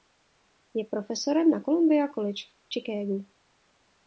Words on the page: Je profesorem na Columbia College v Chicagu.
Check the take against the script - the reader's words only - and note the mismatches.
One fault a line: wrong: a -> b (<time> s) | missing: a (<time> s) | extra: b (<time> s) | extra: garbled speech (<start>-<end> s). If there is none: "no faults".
no faults